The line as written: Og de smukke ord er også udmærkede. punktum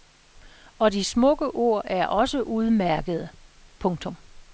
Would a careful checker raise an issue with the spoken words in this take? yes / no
no